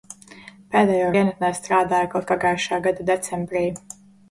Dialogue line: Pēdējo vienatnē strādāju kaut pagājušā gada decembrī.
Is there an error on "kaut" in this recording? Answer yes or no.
no